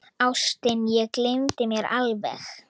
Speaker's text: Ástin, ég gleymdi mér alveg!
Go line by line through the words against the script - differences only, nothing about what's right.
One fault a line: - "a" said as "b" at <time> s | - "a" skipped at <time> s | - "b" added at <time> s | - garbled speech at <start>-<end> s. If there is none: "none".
none